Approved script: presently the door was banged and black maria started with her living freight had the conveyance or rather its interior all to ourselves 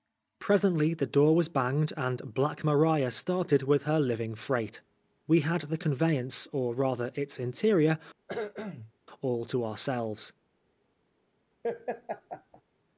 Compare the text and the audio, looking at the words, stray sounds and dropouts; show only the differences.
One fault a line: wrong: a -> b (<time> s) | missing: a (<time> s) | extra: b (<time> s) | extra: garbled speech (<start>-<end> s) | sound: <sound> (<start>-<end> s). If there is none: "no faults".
extra: we (5.3 s)
sound: cough (8.3-8.9 s)
sound: laugh (11.6-12.6 s)